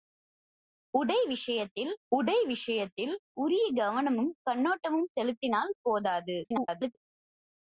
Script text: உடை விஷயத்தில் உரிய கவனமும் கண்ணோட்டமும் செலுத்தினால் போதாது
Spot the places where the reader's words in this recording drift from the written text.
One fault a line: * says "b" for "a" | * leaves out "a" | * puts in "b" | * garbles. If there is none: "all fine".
* puts in "உடை விஷயத்தில்"
* garbles